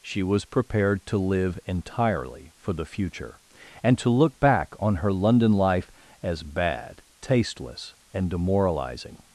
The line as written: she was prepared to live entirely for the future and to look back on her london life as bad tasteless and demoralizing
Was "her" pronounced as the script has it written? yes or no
yes